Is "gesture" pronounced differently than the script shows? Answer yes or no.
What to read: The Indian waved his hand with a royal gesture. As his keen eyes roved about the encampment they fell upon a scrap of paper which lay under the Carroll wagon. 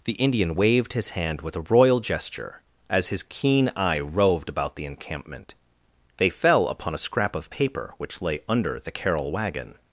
no